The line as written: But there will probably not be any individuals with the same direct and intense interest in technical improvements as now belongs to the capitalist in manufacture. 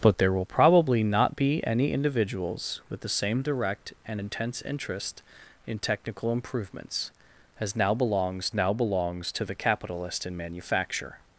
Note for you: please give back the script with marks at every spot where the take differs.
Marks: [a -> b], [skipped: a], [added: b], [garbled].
But there will probably not be any individuals with the same direct and intense interest in technical improvements as now belongs [added: now belongs] to the capitalist in manufacture.